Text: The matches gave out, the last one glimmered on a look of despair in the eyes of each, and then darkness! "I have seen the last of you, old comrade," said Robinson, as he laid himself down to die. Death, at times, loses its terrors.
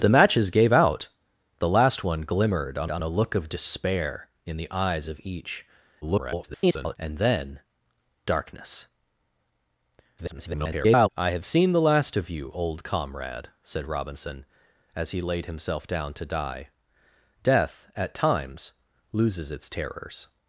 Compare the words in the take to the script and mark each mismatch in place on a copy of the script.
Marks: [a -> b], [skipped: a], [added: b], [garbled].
The matches gave out, the last one glimmered on [added: on] a look of despair in the eyes of each, [garbled] and then darkness! [garbled] "I have seen the last of you, old comrade," said Robinson, as he laid himself down to die. Death, at times, loses its terrors.